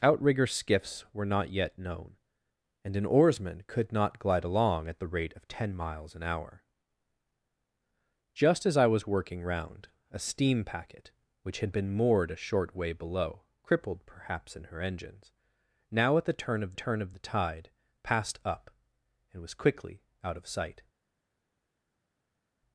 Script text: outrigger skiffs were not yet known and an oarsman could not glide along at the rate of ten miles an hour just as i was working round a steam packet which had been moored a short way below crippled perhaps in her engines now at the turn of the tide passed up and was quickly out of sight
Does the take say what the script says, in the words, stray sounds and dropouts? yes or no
no